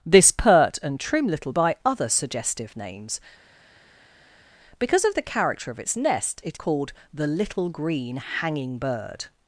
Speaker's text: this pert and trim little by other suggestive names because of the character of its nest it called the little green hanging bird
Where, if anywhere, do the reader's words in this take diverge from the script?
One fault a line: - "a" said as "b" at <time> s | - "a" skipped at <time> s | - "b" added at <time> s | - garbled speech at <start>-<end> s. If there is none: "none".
none